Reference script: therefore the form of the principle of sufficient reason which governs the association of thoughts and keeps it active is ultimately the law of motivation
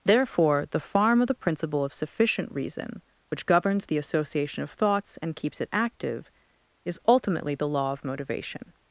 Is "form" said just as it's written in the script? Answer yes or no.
no